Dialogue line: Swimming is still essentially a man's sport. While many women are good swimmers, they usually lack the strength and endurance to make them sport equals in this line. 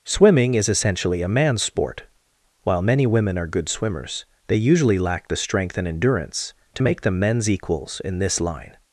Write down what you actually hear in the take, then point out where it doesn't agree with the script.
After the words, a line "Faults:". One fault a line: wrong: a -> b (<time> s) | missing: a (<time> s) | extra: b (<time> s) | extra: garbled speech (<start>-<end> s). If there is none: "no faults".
Swimming is essentially a man's sport. While many women are good swimmers, they usually lack the strength and endurance to make them men's equals in this line.
Faults:
missing: still (0.7 s)
wrong: sport -> men's (7.2 s)